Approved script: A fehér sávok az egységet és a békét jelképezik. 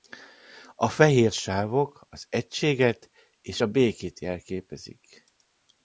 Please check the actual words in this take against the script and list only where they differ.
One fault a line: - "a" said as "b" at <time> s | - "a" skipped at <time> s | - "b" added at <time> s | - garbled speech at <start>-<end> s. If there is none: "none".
none